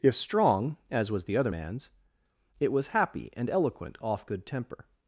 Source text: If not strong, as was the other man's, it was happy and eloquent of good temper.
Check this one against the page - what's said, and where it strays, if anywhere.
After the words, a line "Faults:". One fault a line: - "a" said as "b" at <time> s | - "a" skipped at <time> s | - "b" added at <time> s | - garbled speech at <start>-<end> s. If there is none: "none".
If strong, as was the other man's, it was happy and eloquent off good temper.
Faults:
- "not" skipped at 0.1 s
- "of" said as "off" at 4.0 s